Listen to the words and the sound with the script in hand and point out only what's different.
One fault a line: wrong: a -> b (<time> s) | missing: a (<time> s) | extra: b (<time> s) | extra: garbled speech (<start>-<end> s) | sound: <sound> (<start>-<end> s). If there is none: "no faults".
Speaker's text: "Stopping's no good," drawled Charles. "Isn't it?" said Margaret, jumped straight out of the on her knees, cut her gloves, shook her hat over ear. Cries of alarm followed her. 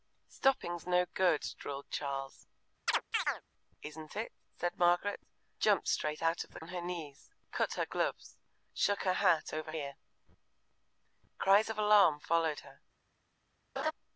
sound: chirp (2.9-3.4 s)
sound: laugh (13.8-13.9 s)